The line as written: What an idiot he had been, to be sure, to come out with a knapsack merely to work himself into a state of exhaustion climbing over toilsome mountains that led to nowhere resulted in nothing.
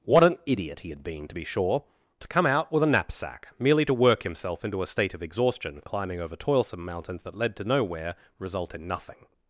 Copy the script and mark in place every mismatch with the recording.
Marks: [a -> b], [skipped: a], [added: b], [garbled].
What an idiot he had been, to be sure, to come out with a knapsack merely to work himself into a state of exhaustion climbing over toilsome mountains that led to nowhere [resulted -> result] in nothing.